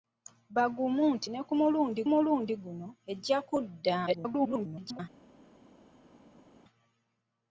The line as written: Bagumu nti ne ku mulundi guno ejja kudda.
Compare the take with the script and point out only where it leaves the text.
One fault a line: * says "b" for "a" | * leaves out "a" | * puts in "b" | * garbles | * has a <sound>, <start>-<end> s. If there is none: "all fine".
* puts in "mulundi"
* garbles